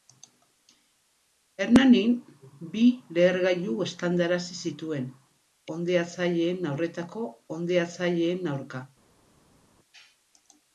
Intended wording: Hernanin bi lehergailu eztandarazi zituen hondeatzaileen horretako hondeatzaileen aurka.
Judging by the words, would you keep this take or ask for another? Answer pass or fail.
pass